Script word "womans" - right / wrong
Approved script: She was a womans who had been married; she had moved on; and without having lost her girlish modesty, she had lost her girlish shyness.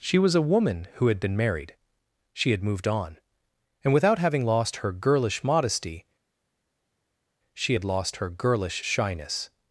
wrong